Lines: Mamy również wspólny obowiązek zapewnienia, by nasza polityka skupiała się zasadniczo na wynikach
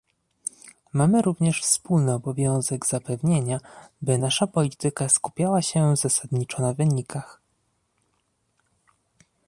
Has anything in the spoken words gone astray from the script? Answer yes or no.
no